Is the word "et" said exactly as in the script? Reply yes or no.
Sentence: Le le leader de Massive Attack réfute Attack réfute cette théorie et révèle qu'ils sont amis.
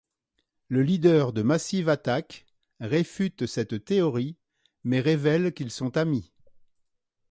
no